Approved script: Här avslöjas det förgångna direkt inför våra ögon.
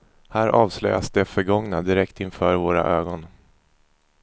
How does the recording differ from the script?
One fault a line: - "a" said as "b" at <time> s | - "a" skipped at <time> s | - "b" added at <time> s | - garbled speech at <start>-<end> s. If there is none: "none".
none